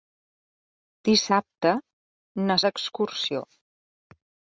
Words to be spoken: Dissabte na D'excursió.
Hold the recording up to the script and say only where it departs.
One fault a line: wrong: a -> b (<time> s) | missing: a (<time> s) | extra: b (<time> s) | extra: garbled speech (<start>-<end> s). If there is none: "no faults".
no faults